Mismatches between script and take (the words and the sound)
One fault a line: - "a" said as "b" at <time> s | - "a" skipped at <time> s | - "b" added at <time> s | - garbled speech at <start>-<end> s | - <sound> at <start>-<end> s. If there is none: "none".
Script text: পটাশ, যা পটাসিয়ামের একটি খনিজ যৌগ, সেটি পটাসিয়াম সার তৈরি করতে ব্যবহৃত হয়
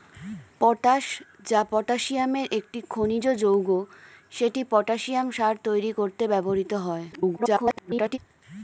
- garbled speech at 7.1-8.2 s